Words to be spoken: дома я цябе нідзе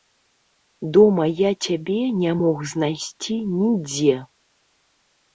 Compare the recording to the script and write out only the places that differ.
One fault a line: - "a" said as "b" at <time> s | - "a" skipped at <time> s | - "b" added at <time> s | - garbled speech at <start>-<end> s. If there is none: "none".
- "не мог знайсці" added at 2.2 s